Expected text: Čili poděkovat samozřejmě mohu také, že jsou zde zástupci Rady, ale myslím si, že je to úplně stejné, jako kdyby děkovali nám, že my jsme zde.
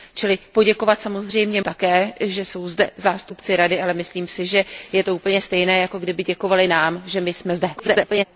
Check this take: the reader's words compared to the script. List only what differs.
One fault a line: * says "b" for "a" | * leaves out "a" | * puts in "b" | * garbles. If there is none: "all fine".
* leaves out "mohu"
* garbles